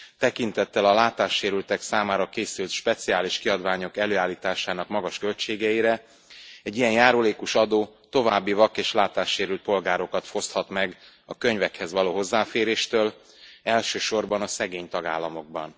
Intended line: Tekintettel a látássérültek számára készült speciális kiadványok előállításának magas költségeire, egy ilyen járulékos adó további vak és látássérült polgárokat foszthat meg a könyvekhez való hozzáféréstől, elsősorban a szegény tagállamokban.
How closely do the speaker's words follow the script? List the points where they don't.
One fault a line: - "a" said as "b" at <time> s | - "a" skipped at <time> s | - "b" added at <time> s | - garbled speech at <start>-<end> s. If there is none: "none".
none